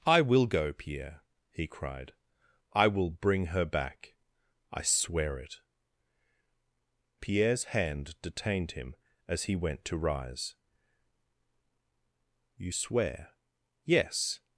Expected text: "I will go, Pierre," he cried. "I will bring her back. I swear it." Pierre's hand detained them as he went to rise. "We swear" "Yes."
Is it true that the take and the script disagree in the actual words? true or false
true